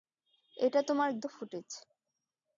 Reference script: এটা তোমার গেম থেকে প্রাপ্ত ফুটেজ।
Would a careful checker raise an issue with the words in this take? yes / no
yes